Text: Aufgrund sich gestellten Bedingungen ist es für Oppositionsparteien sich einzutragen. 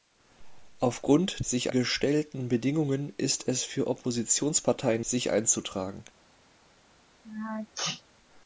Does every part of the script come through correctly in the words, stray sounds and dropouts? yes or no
no